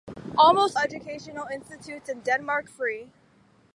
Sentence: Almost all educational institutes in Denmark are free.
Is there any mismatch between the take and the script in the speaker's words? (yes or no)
yes